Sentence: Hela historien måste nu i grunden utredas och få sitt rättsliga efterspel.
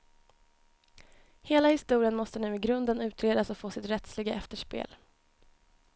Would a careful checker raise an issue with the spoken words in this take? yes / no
no